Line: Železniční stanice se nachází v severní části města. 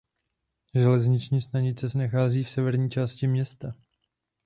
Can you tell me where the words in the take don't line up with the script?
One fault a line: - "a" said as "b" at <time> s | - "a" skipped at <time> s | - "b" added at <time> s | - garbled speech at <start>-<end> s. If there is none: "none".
none